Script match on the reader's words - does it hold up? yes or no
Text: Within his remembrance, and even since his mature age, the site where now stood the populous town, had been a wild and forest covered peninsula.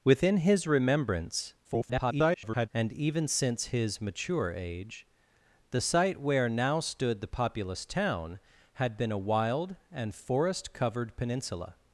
no